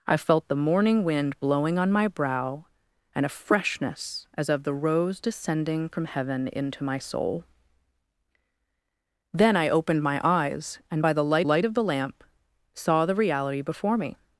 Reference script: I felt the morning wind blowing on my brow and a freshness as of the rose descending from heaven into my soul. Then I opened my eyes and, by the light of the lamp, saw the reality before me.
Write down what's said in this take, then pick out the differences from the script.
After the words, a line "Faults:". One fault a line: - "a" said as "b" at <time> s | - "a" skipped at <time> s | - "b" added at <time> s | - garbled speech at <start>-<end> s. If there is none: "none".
I felt the morning wind blowing on my brow and a freshness as of the rose descending from heaven into my soul. Then I opened my eyes and, by the light light of the lamp, saw the reality before me.
Faults:
- "light" added at 11.4 s